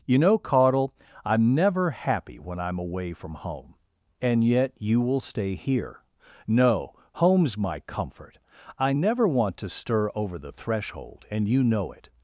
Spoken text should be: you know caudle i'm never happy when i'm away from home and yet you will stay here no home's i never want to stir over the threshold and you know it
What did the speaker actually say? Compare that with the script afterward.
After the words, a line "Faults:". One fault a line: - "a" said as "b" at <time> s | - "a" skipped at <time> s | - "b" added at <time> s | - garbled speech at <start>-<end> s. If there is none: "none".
you know caudle i'm never happy when i'm away from home and yet you will stay here no home's my comfort i never want to stir over the threshold and you know it
Faults:
- "my comfort" added at 7.6 s